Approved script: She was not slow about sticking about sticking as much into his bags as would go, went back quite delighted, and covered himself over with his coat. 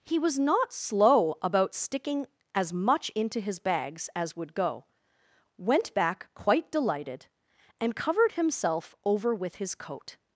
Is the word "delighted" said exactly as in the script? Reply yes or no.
yes